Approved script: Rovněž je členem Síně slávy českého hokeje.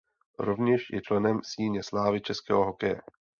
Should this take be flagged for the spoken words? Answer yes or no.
no